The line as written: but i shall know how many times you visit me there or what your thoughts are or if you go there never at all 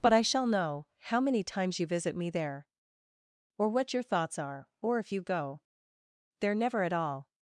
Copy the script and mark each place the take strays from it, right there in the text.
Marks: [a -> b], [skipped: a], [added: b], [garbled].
but i shall know how many times you visit me there or what your thoughts are or if you go there never at all